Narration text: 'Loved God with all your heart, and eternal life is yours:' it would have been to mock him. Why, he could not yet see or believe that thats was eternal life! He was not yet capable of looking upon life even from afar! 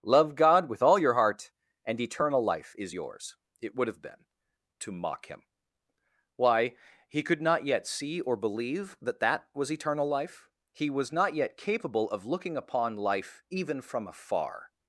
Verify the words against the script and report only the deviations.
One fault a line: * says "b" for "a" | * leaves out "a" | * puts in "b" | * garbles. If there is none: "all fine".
* says "Love" for "Loved"
* says "that" for "thats"